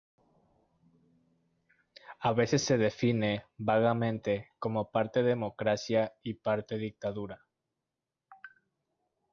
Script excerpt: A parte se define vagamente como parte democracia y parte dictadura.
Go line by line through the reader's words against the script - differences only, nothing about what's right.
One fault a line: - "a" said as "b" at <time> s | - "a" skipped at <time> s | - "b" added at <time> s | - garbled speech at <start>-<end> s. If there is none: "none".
- "parte" said as "veces" at 2.3 s